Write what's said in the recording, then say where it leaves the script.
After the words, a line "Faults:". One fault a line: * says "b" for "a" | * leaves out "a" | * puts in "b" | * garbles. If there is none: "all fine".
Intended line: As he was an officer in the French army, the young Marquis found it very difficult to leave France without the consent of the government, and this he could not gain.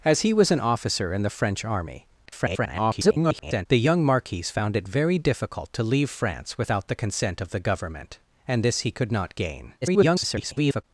As he was an officer in the French army, [garbled] the young Marquis found it very difficult to leave France without the consent of the government, and this he could not gain. [garbled]
Faults:
* garbles
* garbles